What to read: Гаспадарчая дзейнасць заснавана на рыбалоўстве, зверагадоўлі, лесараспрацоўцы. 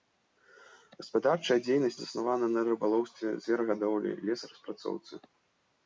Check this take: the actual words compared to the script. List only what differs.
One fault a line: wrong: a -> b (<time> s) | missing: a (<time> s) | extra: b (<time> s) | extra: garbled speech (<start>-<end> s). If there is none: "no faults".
no faults